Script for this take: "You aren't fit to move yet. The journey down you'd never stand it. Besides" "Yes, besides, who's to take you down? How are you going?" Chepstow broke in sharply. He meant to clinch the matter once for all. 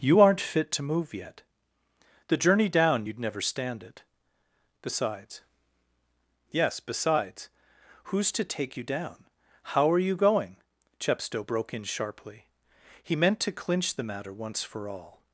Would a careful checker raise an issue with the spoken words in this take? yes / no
no